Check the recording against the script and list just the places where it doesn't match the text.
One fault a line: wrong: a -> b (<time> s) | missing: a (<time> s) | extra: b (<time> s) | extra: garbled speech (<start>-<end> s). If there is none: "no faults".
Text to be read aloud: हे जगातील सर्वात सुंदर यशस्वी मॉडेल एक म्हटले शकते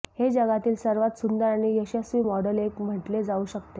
extra: आणि (1.4 s)
extra: जाऊ (3.2 s)